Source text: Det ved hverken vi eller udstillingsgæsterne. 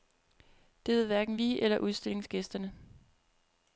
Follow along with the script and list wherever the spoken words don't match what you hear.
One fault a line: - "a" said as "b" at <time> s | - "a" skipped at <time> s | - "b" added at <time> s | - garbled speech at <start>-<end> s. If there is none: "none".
none